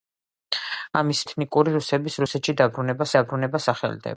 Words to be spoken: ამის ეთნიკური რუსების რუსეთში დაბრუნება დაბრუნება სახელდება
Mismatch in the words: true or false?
false